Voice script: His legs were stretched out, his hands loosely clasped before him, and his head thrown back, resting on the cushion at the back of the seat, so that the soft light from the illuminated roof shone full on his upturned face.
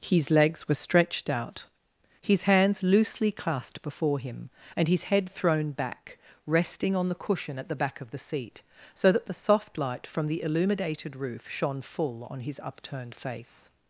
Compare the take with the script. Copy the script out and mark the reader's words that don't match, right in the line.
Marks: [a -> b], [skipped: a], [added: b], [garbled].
His legs were stretched out, his hands loosely clasped before him, and his head thrown back, resting on the cushion at the back of the seat, so that the soft light from the illuminated roof shone full on his upturned face.